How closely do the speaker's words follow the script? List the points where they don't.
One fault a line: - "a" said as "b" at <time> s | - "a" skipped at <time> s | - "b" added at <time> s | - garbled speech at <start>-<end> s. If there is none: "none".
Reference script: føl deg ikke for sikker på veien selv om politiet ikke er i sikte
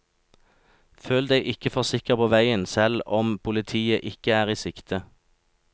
none